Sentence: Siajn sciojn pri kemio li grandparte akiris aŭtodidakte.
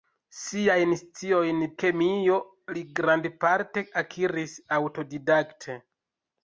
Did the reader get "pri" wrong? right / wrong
wrong